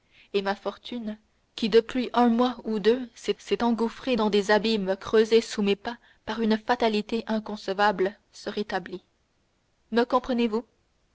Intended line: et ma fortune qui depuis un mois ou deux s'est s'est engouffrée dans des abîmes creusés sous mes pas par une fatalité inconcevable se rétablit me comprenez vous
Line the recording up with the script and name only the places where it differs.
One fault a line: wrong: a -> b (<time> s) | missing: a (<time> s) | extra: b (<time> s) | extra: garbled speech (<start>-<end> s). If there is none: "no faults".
no faults